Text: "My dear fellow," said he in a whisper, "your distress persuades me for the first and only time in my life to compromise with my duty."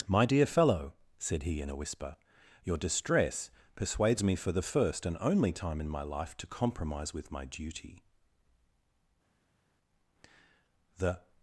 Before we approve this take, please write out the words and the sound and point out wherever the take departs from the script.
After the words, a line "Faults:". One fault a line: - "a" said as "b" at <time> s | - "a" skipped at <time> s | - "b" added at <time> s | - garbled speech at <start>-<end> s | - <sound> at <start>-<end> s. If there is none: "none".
"My dear fellow," said he in a whisper, "your distress persuades me for the first and only time in my life to compromise with my duty." The
Faults:
- "The" added at 11.0 s